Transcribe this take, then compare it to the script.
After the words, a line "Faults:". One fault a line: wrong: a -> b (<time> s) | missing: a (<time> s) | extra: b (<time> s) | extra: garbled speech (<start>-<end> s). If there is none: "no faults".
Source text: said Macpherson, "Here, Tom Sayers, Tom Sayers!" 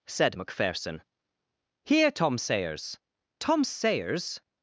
said Macpherson, "Here, Tom Sayers, Tom Sayers!"
Faults:
no faults